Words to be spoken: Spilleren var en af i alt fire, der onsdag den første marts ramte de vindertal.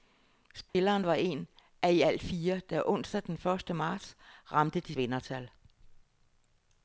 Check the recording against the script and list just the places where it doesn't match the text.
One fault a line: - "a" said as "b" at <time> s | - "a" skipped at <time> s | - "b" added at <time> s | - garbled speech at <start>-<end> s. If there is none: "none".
none